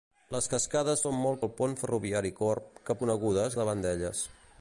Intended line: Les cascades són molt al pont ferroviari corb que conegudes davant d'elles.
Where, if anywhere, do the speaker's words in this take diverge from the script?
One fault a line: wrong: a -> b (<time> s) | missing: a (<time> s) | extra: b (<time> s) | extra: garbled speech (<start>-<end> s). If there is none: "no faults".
no faults